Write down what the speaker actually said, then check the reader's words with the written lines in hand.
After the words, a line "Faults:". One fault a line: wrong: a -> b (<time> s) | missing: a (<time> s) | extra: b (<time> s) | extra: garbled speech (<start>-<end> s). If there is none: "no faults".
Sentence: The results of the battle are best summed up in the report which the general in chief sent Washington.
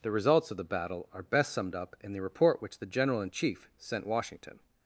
The results of the battle are best summed up in the report which the general in chief sent Washington.
Faults:
no faults